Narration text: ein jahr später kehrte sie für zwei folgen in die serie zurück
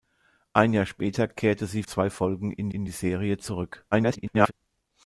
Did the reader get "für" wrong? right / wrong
wrong